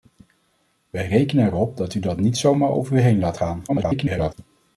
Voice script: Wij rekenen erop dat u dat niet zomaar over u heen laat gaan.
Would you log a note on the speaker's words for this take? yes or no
yes